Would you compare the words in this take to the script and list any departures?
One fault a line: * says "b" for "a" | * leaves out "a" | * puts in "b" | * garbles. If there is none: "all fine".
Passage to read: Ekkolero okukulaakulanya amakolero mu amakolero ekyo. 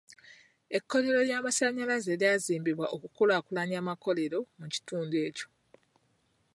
* puts in "ly'amasannyalaze lyazimbibwa"
* says "kitundu" for "amakolero"